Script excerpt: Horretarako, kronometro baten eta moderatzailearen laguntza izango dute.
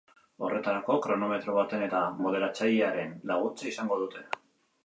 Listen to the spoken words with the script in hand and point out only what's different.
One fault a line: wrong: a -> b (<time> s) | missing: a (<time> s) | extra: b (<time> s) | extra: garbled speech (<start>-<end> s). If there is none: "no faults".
no faults